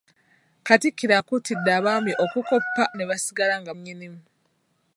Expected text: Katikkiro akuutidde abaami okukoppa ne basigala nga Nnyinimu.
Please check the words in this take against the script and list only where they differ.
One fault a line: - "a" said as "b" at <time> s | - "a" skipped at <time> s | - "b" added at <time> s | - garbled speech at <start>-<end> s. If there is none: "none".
none